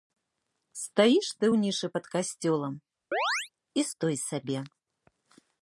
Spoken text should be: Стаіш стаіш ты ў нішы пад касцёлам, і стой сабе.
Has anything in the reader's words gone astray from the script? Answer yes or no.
yes